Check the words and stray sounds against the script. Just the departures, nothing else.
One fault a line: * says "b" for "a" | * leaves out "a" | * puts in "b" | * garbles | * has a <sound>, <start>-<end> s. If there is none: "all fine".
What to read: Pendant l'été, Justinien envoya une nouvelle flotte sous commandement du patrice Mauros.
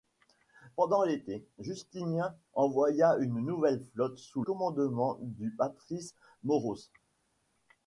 all fine